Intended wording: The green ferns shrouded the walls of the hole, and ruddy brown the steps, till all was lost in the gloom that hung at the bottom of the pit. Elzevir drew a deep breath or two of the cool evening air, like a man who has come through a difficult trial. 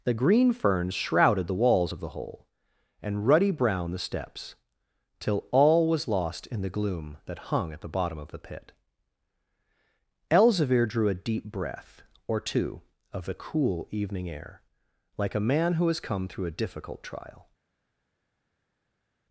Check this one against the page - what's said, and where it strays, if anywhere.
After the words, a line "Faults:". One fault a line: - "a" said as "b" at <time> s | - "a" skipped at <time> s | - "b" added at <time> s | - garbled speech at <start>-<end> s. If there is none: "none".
The green ferns shrouded the walls of the hole, and ruddy brown the steps, till all was lost in the gloom that hung at the bottom of the pit. Elzevir drew a deep breath or two of the cool evening air, like a man who has come through a difficult trial.
Faults:
none